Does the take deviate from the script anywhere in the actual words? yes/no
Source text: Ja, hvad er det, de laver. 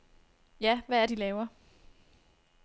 yes